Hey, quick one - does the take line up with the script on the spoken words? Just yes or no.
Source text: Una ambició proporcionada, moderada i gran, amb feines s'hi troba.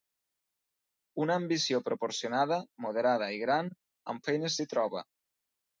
yes